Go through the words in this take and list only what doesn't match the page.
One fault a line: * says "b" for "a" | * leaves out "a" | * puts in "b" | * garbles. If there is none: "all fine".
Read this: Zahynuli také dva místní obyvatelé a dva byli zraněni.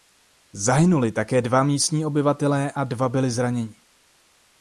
all fine